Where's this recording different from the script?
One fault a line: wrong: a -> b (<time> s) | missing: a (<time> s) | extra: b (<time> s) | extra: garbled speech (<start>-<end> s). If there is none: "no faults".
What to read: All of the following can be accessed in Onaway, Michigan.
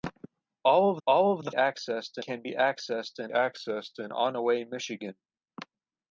extra: all (1.1 s)
wrong: following -> accessed (1.5 s)
extra: accessed in (3.3 s)